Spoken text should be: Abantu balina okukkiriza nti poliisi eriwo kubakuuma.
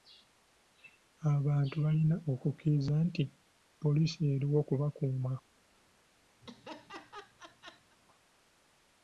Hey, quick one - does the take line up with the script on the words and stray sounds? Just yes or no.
no